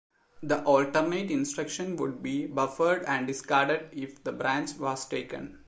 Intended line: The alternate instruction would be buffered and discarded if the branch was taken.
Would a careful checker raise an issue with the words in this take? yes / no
no